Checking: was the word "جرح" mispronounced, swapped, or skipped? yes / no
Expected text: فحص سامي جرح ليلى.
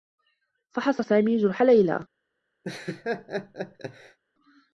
no